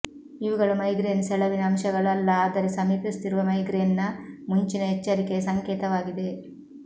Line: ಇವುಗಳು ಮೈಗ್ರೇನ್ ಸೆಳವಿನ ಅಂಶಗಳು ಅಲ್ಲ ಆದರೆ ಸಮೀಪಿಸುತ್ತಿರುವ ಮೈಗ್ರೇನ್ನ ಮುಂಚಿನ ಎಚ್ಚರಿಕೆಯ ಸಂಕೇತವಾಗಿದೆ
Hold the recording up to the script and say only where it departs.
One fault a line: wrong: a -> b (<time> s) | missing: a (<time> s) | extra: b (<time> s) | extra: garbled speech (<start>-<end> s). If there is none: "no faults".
no faults